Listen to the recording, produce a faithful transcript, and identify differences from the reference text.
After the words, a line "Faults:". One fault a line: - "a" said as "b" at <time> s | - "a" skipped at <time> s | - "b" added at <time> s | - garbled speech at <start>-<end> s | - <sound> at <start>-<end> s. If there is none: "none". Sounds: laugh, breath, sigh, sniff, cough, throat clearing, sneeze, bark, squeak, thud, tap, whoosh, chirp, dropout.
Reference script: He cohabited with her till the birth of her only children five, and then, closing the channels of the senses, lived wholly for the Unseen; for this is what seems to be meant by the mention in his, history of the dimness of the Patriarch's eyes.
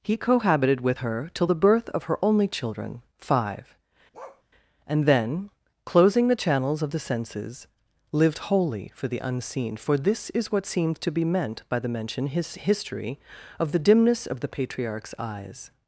He cohabited with her till the birth of her only children five, and then, closing the channels of the senses, lived wholly for the Unseen; for this is what seems to be meant by the mention his, history of the dimness of the Patriarch's eyes.
Faults:
- bark at 4.1-4.4 s
- "in" skipped at 12.3 s